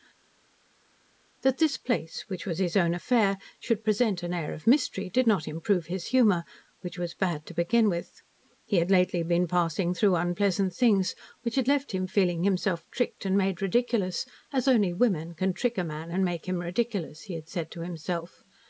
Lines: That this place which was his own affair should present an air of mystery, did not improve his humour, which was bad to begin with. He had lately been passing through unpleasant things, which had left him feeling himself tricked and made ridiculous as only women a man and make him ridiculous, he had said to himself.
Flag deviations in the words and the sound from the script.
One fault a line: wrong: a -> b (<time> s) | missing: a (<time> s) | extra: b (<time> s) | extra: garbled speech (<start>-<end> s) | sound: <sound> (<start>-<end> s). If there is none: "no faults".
extra: can trick (15.3 s)